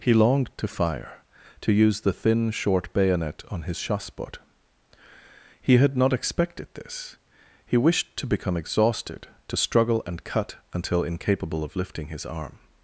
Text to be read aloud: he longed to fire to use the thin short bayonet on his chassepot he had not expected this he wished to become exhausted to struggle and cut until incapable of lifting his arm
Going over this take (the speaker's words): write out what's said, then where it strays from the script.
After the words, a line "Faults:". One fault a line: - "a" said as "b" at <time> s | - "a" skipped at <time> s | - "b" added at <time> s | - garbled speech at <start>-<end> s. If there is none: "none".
he longed to fire to use the thin short bayonet on his chassepot he had not expected this he wished to become exhausted to struggle and cut until incapable of lifting his arm
Faults:
none